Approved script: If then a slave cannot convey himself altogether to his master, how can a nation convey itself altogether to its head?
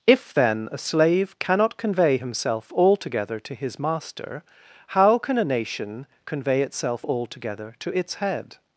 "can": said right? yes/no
yes